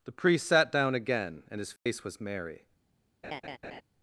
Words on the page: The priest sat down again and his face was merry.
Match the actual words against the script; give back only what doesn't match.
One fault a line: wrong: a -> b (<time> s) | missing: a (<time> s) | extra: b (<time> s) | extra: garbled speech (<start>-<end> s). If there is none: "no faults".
no faults